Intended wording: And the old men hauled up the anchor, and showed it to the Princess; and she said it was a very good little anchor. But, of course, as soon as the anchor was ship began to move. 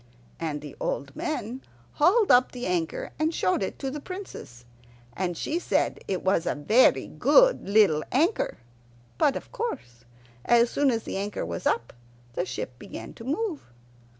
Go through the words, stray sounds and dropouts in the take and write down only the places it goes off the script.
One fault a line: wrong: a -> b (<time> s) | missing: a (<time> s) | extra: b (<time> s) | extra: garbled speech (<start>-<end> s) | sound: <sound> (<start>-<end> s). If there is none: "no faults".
extra: up the (11.6 s)